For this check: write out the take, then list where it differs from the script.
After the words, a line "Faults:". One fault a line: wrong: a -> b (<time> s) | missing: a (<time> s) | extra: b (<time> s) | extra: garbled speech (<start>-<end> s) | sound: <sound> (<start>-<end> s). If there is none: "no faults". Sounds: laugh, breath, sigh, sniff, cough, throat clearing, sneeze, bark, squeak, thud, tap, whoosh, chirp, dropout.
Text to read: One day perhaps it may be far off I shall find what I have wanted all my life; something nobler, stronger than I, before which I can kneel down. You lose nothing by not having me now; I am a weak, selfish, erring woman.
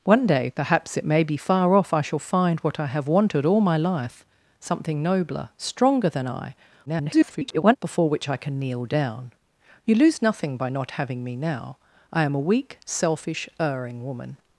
One day perhaps it may be far off I shall find what I have wanted all my life; something nobler, stronger than I, [garbled] before which I can kneel down. You lose nothing by not having me now; I am a weak, selfish, erring woman.
Faults:
extra: garbled speech (6.9-7.8 s)